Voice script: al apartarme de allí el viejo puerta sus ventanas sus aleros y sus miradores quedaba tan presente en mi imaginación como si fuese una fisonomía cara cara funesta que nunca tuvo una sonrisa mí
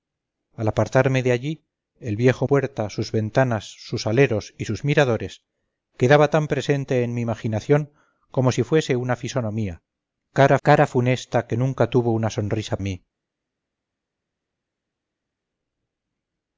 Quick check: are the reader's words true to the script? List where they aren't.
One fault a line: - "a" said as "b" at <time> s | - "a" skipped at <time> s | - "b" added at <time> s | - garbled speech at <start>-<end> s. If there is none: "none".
none